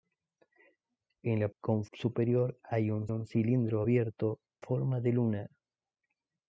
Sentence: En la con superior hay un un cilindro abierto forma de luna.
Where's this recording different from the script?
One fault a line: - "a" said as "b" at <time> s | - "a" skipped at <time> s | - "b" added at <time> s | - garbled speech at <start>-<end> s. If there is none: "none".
none